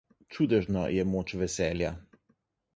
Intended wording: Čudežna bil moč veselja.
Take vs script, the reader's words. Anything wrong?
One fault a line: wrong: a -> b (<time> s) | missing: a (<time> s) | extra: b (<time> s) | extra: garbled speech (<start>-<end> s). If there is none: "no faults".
wrong: bil -> je (0.9 s)